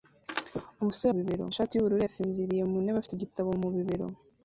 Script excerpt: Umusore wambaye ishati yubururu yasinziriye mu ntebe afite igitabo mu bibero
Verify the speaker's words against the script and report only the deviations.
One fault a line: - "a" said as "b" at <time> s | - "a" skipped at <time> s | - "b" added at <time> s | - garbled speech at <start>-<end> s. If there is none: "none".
- "wambaye" said as "bibero" at 1.1 s